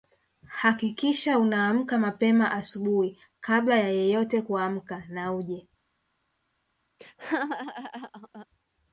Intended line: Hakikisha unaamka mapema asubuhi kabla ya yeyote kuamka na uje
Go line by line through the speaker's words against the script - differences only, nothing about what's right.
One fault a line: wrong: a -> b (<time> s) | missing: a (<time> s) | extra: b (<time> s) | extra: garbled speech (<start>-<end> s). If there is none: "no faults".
no faults